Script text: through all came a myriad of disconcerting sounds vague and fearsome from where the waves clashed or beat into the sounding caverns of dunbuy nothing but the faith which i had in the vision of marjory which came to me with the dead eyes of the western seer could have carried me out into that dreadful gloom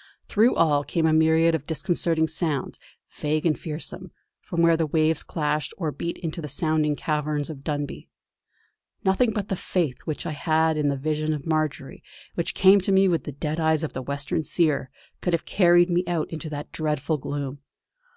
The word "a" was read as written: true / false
true